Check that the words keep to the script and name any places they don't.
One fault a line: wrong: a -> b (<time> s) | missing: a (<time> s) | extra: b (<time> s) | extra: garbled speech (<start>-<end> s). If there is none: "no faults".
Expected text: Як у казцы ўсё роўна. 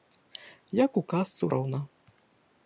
missing: ўсё (1.4 s)